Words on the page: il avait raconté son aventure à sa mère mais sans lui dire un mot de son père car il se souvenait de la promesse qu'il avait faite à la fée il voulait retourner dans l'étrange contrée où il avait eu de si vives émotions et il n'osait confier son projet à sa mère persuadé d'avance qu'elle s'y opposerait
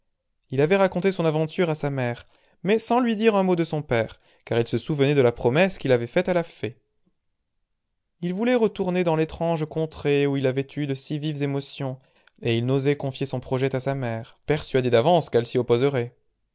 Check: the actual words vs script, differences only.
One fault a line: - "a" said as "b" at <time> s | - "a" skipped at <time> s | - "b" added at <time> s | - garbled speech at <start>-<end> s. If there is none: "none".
none